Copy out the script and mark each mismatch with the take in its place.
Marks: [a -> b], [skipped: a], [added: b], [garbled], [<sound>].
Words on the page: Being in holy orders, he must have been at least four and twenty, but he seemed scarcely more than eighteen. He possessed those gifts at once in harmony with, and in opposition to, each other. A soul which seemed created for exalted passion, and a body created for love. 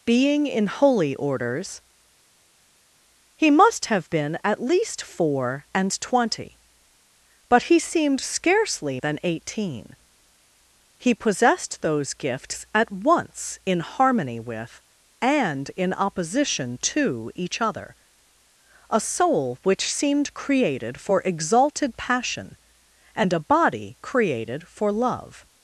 Being in holy orders, he must have been at least four and twenty, but he seemed scarcely [skipped: more] than eighteen. He possessed those gifts at once in harmony with, and in opposition to, each other. A soul which seemed created for exalted passion, and a body created for love.